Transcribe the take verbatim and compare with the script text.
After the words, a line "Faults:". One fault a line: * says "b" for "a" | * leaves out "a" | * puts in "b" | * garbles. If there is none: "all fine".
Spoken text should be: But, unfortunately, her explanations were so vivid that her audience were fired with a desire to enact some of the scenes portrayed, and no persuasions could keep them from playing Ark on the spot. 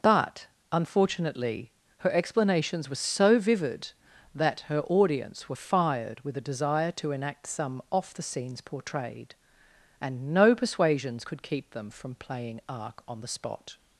But, unfortunately, her explanations were so vivid that her audience were fired with a desire to enact some off the scenes portrayed, and no persuasions could keep them from playing Ark on the spot.
Faults:
* says "off" for "of"